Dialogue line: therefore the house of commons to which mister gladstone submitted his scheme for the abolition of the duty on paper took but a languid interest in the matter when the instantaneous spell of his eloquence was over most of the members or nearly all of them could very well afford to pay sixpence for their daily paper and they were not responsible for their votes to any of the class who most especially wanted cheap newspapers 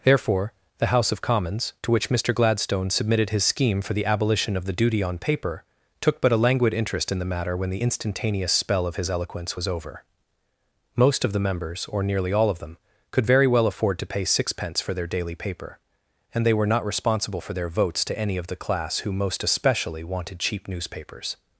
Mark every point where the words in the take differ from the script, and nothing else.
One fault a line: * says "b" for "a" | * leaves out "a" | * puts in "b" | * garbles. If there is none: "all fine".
all fine